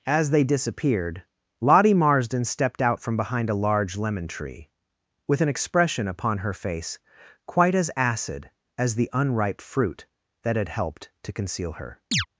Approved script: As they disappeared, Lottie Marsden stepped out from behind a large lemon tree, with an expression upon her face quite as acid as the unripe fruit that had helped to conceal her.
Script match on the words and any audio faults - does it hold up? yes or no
no